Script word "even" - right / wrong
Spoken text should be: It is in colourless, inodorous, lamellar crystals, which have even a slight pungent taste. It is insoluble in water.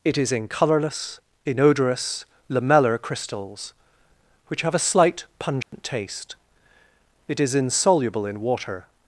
wrong